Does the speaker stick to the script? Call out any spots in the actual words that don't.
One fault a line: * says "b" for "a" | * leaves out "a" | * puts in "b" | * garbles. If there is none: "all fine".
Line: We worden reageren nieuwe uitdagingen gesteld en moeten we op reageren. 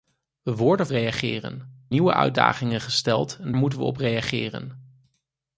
all fine